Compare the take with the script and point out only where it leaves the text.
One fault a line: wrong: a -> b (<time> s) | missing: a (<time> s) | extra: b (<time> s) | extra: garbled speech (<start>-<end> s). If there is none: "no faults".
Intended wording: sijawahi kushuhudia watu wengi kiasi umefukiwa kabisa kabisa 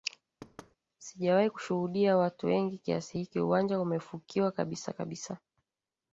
extra: hiki uwanja (3.2 s)